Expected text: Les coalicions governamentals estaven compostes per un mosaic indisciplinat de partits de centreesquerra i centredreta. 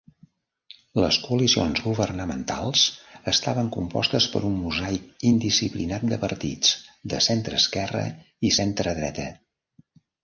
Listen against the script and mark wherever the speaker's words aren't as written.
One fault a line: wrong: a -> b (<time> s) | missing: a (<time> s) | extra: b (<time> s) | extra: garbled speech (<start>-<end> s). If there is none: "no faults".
no faults